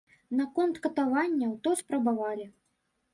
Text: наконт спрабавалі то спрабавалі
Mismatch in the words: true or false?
true